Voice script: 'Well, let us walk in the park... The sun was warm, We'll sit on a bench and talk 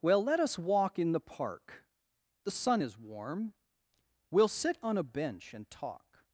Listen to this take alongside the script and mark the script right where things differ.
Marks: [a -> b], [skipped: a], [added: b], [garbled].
'Well, let us walk in the park... The sun [was -> is] warm, We'll sit on a bench and talk